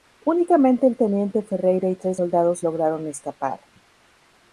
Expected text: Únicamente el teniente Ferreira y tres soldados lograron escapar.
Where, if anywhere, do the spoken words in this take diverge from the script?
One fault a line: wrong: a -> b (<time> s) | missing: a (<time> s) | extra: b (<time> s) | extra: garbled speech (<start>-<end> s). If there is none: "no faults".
no faults